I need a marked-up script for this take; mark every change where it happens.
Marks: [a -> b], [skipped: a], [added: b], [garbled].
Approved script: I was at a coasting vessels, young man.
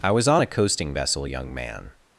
I was [at -> on] a coasting [vessels, -> vessel] young man.